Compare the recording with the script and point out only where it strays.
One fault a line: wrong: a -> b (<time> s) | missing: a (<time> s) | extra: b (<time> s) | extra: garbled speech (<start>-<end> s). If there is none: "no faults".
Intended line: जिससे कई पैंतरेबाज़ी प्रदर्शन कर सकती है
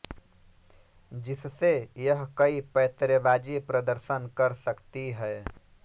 extra: यह (2.0 s)